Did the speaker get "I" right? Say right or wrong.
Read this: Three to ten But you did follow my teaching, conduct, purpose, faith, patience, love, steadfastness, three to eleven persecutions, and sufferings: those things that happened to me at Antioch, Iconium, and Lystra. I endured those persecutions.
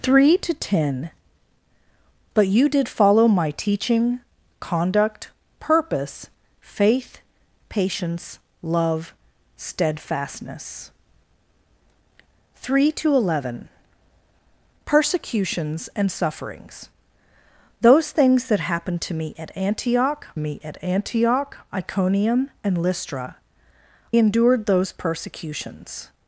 wrong